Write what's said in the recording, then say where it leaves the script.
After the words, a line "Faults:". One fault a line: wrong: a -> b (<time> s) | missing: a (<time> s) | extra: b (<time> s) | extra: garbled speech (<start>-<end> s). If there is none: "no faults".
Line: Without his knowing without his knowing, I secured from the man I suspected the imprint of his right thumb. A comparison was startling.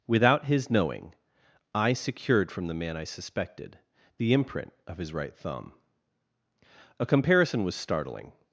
Without his knowing, I secured from the man I suspected the imprint of his right thumb. A comparison was startling.
Faults:
missing: without his knowing (1.1 s)